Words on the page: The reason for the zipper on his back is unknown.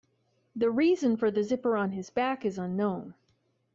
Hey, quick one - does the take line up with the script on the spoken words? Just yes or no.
yes